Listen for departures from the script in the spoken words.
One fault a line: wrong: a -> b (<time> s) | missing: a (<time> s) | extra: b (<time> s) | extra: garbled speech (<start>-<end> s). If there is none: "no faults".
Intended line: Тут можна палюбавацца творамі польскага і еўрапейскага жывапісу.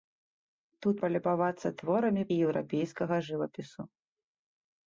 missing: можна (1.0 s)
missing: польскага (2.2 s)